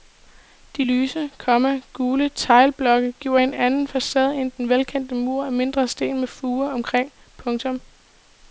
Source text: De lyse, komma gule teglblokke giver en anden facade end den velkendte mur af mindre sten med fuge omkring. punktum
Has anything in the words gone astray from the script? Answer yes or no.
no